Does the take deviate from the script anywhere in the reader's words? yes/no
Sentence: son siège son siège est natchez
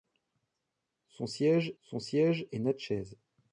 no